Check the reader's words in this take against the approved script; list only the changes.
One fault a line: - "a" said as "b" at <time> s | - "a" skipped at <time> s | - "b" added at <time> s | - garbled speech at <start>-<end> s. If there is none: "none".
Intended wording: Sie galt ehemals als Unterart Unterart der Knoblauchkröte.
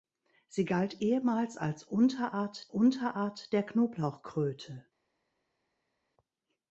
none